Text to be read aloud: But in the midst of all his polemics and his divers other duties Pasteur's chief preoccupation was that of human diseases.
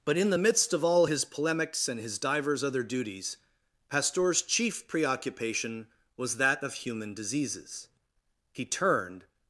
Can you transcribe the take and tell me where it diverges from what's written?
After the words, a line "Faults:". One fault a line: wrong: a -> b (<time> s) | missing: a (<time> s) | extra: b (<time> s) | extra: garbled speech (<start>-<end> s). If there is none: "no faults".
But in the midst of all his polemics and his divers other duties Pasteur's chief preoccupation was that of human diseases. He turned
Faults:
extra: He turned (8.5 s)